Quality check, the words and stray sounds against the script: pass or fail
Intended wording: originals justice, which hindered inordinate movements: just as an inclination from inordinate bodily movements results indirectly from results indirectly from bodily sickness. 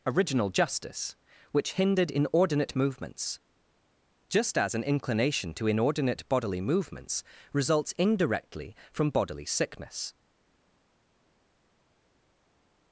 fail